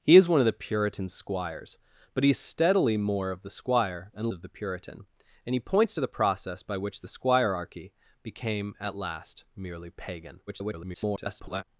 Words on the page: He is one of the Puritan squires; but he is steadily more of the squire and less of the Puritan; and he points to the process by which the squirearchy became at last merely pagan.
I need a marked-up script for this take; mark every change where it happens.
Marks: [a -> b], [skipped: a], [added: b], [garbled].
He is one of the Puritan squires; but he is steadily more of the squire and [skipped: less] of the Puritan; and he points to the process by which the squirearchy became at last merely pagan. [garbled]